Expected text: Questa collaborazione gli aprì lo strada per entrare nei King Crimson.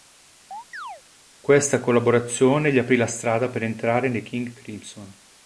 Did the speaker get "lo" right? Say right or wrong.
wrong